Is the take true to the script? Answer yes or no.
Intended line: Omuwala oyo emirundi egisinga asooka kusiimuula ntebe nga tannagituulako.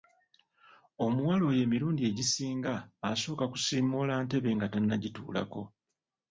yes